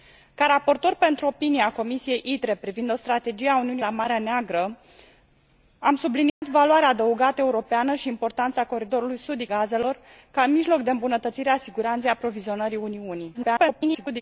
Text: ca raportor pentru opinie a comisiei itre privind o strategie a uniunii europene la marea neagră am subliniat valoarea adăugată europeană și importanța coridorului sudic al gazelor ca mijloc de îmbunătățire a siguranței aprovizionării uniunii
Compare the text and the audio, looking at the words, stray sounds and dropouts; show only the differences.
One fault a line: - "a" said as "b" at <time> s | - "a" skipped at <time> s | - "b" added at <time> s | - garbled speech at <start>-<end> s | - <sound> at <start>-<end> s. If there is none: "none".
- "europene" skipped at 3.8 s
- dropout at 6.3-6.4 s
- "al" skipped at 9.5 s
- garbled speech at 13.3-14.2 s